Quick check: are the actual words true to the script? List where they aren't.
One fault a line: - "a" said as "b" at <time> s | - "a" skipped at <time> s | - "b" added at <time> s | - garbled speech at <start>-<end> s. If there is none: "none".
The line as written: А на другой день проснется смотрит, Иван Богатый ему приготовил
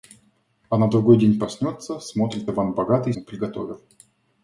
none